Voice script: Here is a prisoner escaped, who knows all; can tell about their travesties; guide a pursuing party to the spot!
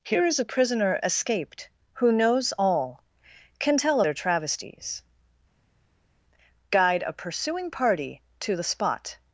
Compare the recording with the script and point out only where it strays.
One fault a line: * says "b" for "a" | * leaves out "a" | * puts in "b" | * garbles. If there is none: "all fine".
* leaves out "about"